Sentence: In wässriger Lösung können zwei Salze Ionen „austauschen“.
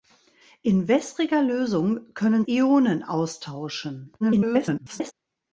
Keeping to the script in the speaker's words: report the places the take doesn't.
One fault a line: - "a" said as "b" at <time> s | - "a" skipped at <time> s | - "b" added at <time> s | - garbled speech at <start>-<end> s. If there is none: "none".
- "zwei Salze" skipped at 2.5 s
- garbled speech at 4.2-5.1 s